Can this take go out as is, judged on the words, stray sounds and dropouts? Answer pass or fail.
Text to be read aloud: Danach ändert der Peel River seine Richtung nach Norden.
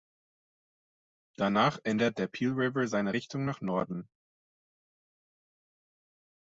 pass